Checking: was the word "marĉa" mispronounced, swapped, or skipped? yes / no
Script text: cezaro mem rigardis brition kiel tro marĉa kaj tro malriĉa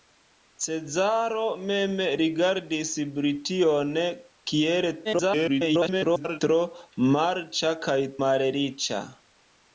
no